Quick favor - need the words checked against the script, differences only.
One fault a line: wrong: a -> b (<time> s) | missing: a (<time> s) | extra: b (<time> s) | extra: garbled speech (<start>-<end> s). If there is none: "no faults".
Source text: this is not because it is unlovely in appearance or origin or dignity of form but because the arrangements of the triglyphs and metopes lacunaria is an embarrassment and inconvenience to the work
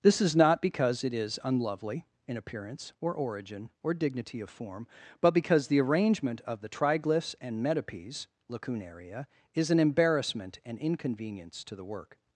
wrong: arrangements -> arrangement (5.8 s)